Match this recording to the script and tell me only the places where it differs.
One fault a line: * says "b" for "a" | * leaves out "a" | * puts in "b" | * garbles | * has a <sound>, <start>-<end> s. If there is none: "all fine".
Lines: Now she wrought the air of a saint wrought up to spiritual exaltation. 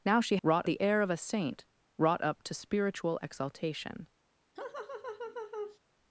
* has a laugh, 4.6-5.8 s